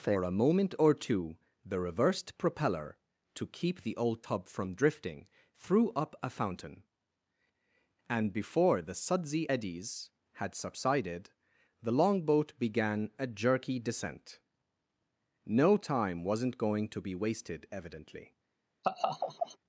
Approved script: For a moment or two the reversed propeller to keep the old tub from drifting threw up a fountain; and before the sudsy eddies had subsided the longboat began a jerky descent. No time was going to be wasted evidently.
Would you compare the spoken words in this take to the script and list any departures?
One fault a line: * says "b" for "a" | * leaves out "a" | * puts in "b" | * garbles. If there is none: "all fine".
* says "wasn't" for "was"